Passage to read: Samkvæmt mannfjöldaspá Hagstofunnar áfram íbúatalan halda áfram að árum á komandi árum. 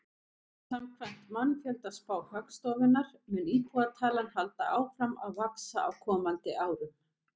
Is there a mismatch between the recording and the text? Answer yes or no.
yes